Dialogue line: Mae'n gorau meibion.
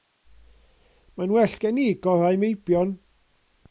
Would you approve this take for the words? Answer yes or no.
no